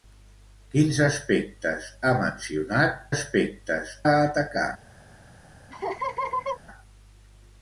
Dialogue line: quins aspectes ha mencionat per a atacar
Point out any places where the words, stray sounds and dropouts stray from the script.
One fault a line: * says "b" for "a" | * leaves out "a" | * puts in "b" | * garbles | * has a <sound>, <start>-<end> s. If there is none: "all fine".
* says "aspectes" for "per"
* has a laugh, 5.7-6.6 s